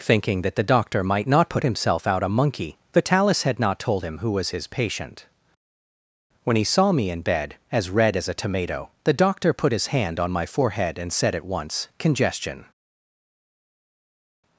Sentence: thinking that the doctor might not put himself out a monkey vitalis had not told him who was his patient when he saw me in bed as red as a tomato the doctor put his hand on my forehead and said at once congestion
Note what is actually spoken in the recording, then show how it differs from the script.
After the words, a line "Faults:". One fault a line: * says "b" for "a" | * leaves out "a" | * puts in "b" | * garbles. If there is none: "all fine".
thinking that the doctor might not put himself out a monkey vitalis had not told him who was his patient when he saw me in bed as red as a tomato the doctor put his hand on my forehead and said at once congestion
Faults:
all fine